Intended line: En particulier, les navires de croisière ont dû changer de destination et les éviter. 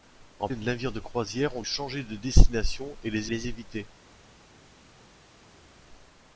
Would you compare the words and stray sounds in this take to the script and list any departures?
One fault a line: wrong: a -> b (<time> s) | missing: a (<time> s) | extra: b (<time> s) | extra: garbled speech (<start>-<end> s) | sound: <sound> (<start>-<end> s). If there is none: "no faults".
missing: particulier (0.5 s)
missing: dû (1.6 s)
extra: les (3.3 s)